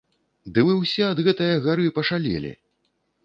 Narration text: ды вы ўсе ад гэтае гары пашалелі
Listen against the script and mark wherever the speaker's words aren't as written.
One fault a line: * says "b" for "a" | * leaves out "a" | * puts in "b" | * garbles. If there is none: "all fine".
all fine